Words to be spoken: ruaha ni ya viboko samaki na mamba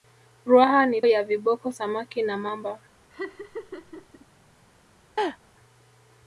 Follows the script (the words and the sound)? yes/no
no